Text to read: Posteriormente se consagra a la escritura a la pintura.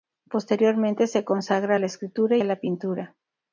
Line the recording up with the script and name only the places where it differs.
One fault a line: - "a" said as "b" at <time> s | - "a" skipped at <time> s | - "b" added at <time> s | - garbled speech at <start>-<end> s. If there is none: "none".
none